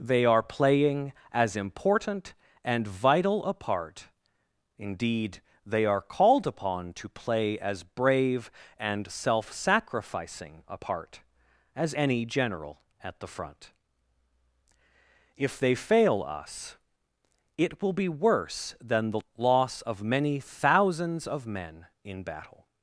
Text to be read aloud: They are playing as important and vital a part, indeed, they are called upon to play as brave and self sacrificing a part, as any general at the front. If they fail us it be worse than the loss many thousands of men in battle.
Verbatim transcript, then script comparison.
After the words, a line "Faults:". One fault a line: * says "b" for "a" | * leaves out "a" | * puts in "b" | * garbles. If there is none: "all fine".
They are playing as important and vital a part, indeed, they are called upon to play as brave and self sacrificing a part, as any general at the front. If they fail us it will be worse than the loss of many thousands of men in battle.
Faults:
* puts in "will"
* puts in "of"